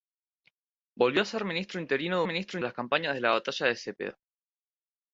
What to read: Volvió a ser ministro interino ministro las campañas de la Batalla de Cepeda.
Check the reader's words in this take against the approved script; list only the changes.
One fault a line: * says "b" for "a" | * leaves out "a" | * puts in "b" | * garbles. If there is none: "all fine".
all fine